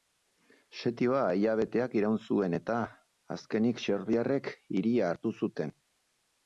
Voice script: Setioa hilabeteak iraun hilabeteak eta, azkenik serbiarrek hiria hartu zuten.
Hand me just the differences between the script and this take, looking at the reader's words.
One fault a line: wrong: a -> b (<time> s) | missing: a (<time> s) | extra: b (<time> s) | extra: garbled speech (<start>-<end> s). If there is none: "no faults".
wrong: hilabeteak -> zuen (2.3 s)